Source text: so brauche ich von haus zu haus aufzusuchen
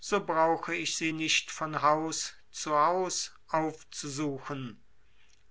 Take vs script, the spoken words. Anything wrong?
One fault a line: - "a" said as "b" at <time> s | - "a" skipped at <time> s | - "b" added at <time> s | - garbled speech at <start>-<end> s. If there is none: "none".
- "sie nicht" added at 1.0 s